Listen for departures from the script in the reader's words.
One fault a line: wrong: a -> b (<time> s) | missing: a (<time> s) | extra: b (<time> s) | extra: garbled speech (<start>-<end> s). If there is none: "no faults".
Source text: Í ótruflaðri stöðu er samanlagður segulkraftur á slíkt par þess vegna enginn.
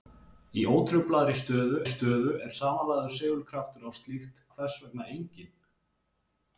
extra: stöðu (1.9 s)
missing: par (4.4 s)